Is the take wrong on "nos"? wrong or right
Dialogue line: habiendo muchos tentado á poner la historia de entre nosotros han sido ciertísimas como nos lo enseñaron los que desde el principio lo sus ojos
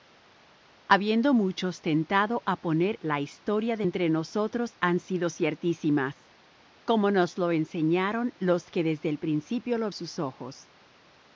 right